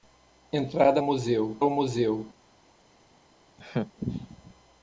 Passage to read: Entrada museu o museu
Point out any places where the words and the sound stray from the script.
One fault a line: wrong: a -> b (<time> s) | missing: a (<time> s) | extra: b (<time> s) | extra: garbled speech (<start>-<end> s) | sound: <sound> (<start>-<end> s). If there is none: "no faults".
sound: laugh (3.6-3.9 s)